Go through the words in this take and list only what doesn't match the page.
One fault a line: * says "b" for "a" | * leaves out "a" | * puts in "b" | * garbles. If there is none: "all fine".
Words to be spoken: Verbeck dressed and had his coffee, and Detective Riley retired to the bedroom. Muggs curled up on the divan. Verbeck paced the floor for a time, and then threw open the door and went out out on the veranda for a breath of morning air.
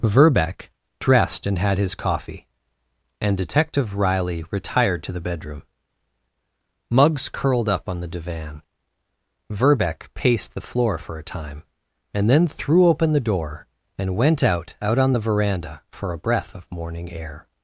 all fine